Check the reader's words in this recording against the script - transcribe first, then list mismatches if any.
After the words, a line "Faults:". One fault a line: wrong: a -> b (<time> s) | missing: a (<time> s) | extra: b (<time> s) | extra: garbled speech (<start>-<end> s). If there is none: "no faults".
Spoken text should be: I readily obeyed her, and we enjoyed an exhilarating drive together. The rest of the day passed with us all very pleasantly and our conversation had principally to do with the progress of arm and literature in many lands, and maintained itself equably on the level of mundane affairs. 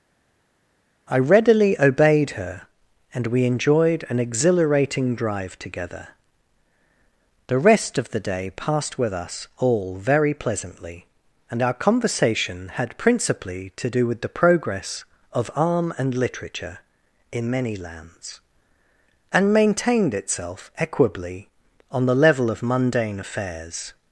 I readily obeyed her, and we enjoyed an exhilarating drive together. The rest of the day passed with us all very pleasantly and our conversation had principally to do with the progress of arm and literature in many lands, and maintained itself equably on the level of mundane affairs.
Faults:
no faults